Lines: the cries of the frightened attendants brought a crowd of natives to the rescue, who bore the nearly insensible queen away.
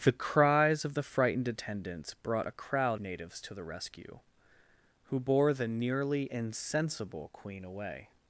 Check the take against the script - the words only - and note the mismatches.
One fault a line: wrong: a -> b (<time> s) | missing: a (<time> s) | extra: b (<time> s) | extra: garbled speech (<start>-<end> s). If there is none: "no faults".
missing: of (3.0 s)